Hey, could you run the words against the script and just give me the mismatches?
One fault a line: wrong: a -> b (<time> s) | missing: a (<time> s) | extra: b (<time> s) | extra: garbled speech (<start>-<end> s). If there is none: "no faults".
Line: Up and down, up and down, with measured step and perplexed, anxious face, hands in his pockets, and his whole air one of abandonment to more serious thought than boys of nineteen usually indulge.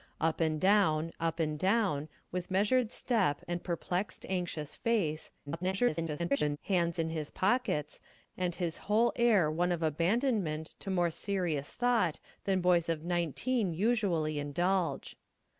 extra: garbled speech (5.5-6.6 s)